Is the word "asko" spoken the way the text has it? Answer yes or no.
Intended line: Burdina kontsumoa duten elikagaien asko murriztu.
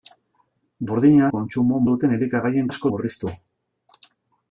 yes